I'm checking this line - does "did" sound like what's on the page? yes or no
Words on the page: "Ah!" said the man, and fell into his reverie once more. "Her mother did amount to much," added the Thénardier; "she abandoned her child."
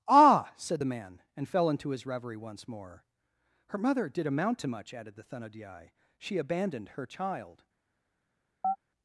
yes